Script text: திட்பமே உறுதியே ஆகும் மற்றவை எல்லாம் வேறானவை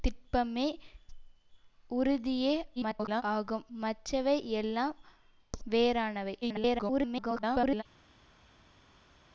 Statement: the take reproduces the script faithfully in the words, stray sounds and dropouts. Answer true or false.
false